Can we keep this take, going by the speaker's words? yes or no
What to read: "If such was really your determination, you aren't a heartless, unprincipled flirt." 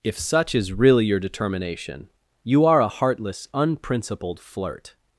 no